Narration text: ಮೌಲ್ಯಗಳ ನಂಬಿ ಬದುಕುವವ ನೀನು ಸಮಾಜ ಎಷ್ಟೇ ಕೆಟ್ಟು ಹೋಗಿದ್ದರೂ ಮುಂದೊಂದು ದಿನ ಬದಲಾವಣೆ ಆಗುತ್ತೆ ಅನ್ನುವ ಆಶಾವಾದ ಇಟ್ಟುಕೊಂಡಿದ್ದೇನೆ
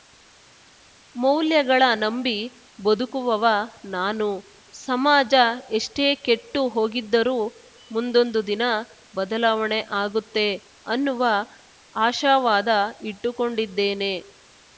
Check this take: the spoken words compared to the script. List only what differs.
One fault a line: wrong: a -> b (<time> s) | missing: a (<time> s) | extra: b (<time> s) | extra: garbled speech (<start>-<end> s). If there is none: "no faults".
wrong: ನೀನು -> ನಾನು (4.0 s)